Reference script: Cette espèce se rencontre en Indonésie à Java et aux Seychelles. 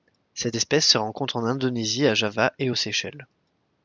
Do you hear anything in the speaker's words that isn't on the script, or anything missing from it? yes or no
no